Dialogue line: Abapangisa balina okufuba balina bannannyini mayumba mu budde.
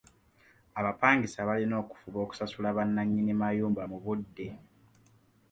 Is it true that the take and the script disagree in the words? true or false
true